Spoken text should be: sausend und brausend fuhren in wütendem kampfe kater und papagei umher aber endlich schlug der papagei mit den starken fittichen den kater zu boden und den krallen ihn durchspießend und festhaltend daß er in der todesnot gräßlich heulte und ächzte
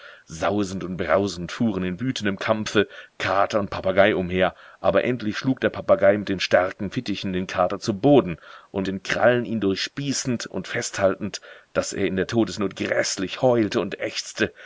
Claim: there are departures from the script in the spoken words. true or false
false